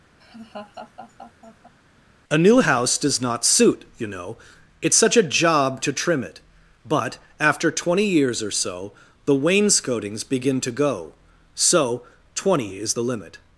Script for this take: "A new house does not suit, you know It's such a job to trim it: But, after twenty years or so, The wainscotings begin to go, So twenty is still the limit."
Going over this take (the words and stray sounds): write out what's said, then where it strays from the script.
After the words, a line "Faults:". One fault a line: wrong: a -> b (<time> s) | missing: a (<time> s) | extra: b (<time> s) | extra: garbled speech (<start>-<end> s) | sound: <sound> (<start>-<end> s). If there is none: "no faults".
"A new house does not suit, you know It's such a job to trim it: But, after twenty years or so, The wainscotings begin to go, So twenty is the limit."
Faults:
sound: laugh (0.2-1.7 s)
missing: still (12.9 s)